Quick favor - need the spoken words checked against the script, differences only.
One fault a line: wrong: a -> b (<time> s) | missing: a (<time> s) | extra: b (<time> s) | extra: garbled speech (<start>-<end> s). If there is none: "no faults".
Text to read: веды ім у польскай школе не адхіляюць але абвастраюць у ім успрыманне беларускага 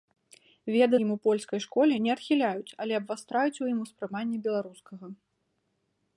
no faults